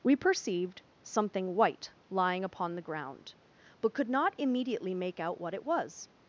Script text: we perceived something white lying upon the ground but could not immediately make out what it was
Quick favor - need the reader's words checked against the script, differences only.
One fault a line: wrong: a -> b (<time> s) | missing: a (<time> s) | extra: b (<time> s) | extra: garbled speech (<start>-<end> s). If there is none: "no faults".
no faults